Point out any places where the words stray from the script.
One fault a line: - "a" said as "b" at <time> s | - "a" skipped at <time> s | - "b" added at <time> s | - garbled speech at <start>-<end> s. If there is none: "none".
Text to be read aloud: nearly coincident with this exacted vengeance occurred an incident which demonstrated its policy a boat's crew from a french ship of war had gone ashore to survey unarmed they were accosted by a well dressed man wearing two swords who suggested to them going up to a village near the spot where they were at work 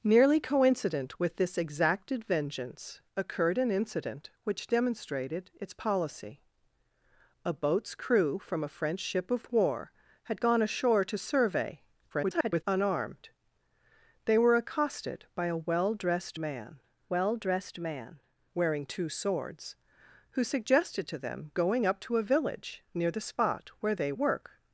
- garbled speech at 12.1-12.6 s
- "well dressed man" added at 17.1 s
- "were at" skipped at 24.1 s